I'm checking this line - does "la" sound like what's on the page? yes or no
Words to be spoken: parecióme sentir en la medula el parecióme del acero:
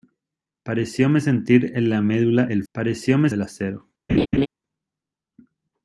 yes